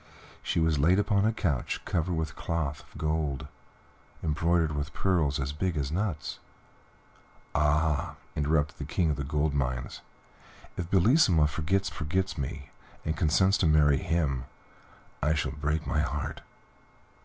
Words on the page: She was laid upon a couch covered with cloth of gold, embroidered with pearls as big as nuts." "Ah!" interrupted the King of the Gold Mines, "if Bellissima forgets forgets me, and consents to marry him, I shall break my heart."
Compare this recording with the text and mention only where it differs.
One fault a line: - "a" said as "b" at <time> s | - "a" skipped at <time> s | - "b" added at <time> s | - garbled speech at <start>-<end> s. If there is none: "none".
none